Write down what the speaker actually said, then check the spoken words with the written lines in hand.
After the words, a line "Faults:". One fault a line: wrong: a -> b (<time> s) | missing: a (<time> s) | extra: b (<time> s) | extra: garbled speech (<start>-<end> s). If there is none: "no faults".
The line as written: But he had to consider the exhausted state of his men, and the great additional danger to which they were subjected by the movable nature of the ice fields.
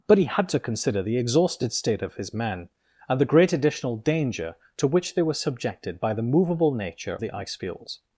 But he had to consider the exhausted state of his men, and the great additional danger to which they were subjected by the movable nature the ice fields.
Faults:
missing: of (7.2 s)